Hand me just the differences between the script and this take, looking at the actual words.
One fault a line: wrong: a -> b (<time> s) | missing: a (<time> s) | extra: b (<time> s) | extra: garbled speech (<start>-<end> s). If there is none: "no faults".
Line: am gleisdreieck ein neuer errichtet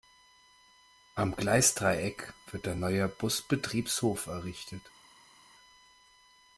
extra: wird (2.5 s)
extra: busbetriebshof (3.1 s)